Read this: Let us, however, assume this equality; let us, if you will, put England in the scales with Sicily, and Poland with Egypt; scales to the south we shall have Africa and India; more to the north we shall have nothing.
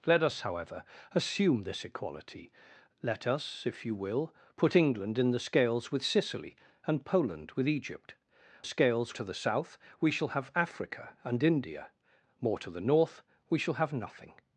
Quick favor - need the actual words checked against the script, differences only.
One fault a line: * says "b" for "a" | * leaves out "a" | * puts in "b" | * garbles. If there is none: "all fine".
all fine